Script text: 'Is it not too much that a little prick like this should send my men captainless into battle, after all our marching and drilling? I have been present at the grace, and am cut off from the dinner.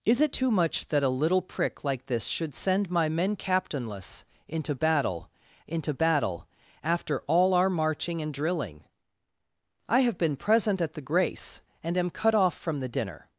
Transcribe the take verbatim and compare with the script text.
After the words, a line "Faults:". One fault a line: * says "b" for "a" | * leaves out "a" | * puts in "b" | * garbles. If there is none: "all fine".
'Is it too much that a little prick like this should send my men captainless into battle into battle, after all our marching and drilling? I have been present at the grace, and am cut off from the dinner.
Faults:
* leaves out "not"
* puts in "into battle"